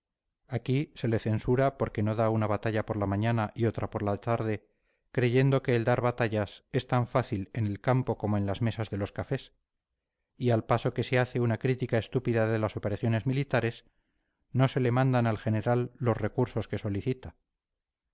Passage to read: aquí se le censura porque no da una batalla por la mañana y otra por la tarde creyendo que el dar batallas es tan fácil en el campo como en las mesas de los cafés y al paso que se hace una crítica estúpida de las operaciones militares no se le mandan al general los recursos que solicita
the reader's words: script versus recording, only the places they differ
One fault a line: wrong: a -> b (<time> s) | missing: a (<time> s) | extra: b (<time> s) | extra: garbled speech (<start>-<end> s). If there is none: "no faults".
no faults